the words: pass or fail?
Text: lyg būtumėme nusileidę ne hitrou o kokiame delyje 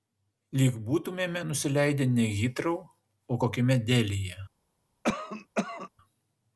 pass